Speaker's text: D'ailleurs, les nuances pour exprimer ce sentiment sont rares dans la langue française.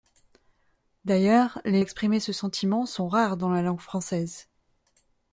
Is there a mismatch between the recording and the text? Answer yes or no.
yes